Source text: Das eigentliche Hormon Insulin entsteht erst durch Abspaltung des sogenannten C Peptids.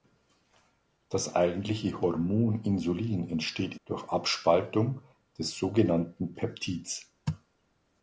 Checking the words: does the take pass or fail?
fail